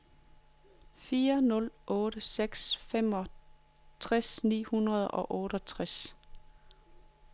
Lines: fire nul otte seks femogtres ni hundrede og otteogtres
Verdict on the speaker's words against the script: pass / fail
pass